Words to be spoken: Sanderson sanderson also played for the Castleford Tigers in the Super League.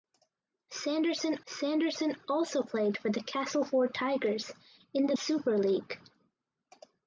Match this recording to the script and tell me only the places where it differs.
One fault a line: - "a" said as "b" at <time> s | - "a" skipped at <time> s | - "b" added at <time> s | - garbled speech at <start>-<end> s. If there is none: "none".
none